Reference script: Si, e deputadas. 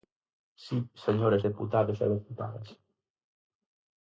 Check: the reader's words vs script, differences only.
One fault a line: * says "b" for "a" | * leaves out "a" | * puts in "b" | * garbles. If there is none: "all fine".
* puts in "señores deputados"